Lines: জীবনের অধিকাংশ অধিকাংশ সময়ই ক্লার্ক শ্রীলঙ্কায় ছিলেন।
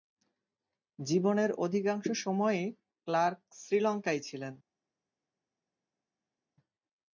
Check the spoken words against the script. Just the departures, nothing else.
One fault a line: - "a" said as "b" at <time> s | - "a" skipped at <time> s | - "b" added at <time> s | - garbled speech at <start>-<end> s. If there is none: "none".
- "অধিকাংশ" skipped at 2.0 s